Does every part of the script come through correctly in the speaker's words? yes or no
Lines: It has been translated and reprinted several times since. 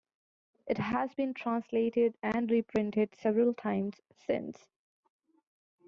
yes